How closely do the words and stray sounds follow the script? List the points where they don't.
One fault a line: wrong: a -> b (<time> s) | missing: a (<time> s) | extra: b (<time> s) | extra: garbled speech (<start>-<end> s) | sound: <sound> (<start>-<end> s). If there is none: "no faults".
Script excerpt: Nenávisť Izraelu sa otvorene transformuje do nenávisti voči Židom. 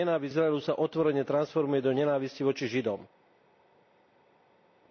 no faults